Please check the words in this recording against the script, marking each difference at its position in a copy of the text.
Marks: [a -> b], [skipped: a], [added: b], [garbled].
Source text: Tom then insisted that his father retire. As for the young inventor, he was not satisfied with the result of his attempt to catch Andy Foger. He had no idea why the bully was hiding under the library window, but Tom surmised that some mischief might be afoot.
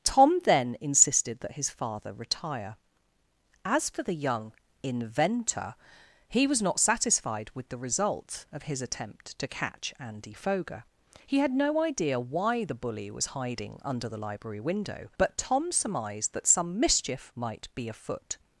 Tom then insisted that his father retire. As for the young inventor, he was not satisfied with the result of his attempt to catch Andy Foger. He had no idea why the bully was hiding under the library window, but Tom surmised that some mischief might be afoot.